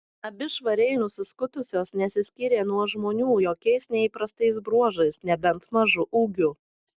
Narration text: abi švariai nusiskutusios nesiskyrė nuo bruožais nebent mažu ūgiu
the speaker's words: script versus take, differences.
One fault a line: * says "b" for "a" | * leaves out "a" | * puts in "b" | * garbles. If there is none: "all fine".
* puts in "žmonių jokiais neįprastais"